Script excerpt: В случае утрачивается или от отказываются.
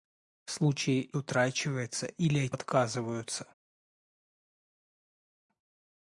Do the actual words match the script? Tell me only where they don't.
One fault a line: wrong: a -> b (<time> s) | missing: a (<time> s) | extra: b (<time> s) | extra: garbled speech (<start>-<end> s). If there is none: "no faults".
no faults